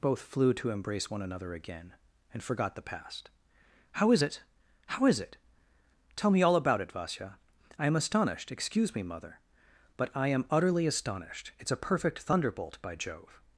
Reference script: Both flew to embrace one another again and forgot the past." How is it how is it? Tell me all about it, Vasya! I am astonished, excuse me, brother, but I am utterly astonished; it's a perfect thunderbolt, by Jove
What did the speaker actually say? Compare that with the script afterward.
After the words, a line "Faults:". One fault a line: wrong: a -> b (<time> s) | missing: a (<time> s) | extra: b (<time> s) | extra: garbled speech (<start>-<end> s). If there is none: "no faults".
Both flew to embrace one another again and forgot the past." How is it how is it? Tell me all about it, Vasya! I am astonished, excuse me, mother, but I am utterly astonished; it's a perfect thunderbolt, by Jove
Faults:
wrong: brother -> mother (9.0 s)